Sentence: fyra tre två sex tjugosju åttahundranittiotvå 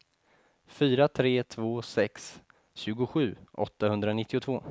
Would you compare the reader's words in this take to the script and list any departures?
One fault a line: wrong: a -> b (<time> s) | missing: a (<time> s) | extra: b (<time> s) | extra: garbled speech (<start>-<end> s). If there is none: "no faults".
no faults